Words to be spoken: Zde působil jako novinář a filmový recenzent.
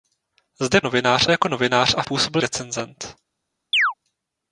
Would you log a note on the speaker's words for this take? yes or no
yes